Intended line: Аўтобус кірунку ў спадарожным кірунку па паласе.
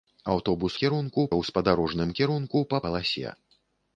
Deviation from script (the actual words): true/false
false